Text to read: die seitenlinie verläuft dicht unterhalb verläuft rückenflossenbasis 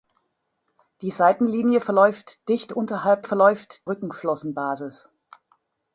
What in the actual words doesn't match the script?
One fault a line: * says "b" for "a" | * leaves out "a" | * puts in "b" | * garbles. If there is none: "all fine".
all fine